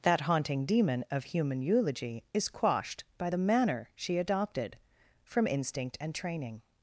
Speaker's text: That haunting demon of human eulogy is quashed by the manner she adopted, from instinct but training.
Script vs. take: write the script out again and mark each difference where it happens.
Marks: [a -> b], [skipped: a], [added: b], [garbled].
That haunting demon of human eulogy is quashed by the manner she adopted, from instinct [but -> and] training.